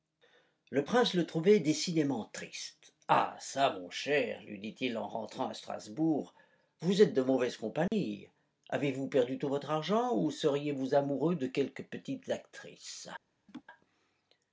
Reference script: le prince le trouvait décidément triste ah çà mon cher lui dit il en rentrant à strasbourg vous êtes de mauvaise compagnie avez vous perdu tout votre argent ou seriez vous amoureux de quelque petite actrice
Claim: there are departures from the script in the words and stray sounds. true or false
true